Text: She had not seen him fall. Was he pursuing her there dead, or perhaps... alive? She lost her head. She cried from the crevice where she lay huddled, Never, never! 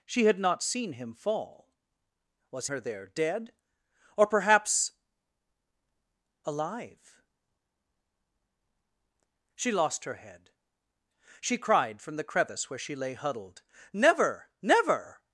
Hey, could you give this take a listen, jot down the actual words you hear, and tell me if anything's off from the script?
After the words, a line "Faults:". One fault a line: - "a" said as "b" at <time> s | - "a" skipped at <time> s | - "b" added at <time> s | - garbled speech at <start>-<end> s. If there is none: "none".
She had not seen him fall. Was her there dead, or perhaps... alive? She lost her head. She cried from the crevice where she lay huddled, Never, never!
Faults:
- "he pursuing" skipped at 2.7 s